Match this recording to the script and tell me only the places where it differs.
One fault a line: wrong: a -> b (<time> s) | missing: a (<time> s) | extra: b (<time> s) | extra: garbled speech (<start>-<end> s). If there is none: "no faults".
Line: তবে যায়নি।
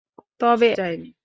no faults